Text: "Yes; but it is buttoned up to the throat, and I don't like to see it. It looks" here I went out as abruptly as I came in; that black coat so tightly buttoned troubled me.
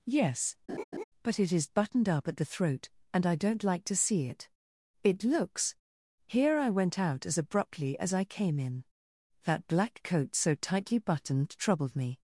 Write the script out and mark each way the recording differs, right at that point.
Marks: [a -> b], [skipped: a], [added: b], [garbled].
"Yes; but it is buttoned up [to -> at] the throat, and I don't like to see it. It looks" here I went out as abruptly as I came in; that black coat so tightly buttoned troubled me.